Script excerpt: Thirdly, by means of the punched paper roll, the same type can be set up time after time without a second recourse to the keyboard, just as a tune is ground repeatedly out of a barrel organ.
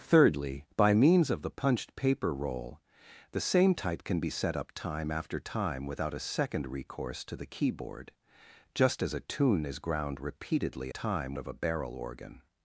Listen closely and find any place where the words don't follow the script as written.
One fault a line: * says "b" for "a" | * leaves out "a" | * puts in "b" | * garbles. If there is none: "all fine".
* says "time" for "out"